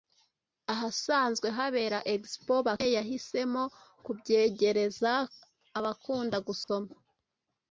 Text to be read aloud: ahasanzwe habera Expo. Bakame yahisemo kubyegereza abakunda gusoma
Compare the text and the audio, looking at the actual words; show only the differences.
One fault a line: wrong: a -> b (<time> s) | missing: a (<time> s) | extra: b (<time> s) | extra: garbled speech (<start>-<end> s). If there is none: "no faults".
no faults